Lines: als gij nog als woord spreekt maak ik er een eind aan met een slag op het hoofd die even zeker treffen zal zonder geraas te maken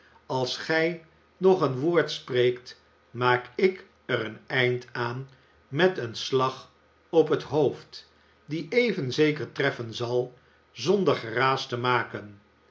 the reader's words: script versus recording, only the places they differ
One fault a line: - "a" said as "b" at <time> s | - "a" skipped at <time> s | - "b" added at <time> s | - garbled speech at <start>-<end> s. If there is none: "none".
- "als" said as "een" at 1.6 s